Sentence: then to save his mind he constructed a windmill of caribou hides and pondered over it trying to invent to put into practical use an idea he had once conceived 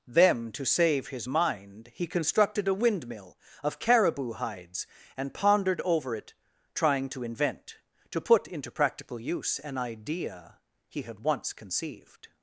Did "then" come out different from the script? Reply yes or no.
yes